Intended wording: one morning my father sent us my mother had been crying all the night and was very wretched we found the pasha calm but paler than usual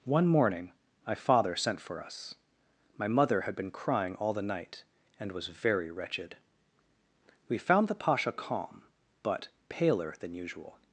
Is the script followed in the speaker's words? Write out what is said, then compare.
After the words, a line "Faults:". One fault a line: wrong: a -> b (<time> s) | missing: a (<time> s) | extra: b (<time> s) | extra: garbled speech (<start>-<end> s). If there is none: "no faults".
one morning my father sent for us my mother had been crying all the night and was very wretched we found the pasha calm but paler than usual
Faults:
extra: for (1.8 s)